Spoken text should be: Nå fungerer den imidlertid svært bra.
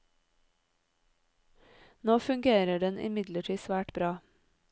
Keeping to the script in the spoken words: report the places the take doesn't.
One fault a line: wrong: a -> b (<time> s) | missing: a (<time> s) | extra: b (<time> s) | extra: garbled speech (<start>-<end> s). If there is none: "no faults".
no faults